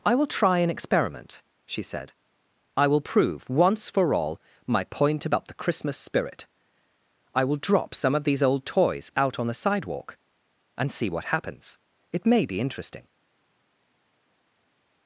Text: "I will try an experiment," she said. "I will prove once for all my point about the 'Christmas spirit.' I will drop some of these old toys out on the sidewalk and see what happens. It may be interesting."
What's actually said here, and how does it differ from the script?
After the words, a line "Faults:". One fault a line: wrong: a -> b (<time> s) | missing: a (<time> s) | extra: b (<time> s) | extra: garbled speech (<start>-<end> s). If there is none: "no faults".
"I will try an experiment," she said. "I will prove once for all my point about the 'Christmas spirit.' I will drop some of these old toys out on the sidewalk and see what happens. It may be interesting."
Faults:
no faults